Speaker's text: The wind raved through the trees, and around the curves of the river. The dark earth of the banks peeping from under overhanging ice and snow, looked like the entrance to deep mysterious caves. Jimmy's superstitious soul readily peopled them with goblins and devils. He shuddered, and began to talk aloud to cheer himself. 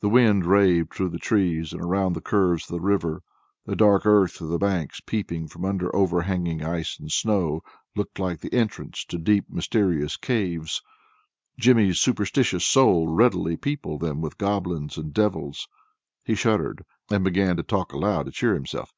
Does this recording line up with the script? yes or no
yes